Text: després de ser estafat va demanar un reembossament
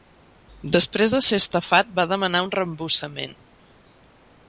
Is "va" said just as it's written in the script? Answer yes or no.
yes